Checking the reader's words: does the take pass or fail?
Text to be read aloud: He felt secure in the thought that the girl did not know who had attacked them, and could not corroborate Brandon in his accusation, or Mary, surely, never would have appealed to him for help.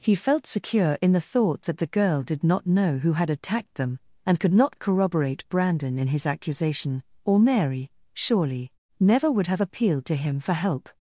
pass